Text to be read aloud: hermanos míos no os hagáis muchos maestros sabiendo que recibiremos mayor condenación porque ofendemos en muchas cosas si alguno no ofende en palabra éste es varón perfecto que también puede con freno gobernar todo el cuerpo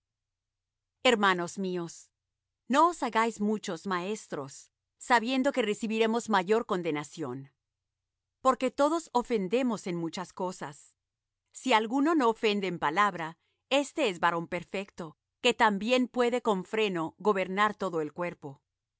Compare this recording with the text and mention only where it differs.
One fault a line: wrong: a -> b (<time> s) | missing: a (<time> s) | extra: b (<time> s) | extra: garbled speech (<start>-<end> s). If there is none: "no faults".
extra: todos (8.7 s)